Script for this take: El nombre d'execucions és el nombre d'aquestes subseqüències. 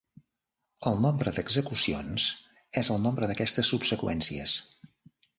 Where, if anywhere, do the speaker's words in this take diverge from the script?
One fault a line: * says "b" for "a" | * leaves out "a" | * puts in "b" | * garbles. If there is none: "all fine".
all fine